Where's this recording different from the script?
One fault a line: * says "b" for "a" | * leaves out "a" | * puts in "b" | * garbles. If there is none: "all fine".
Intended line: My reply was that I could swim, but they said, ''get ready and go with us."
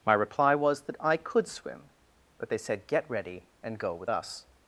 all fine